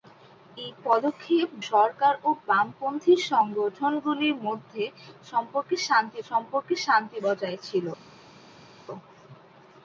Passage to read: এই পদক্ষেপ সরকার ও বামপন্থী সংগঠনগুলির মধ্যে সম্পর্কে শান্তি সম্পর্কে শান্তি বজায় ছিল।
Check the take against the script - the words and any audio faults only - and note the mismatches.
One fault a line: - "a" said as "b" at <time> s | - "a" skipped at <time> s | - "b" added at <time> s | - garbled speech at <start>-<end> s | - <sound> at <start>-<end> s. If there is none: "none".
none